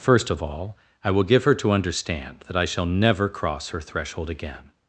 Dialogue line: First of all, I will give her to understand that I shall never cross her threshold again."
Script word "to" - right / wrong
right